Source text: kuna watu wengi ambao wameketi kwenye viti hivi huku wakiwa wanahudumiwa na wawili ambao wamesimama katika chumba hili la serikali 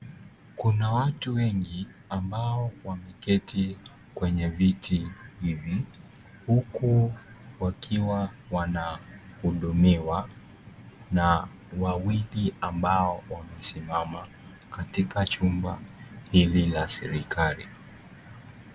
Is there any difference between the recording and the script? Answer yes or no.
no